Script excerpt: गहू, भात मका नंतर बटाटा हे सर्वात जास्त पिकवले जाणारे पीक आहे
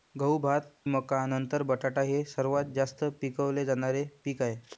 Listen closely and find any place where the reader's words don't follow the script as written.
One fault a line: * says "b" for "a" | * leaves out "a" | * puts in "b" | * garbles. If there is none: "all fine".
all fine